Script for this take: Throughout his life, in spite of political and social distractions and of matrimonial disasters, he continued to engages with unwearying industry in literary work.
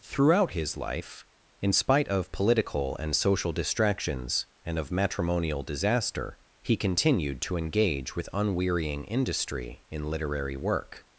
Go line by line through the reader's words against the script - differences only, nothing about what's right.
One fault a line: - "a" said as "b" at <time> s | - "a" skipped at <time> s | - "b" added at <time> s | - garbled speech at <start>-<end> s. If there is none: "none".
- "disasters" said as "disaster" at 5.6 s
- "engages" said as "engage" at 7.6 s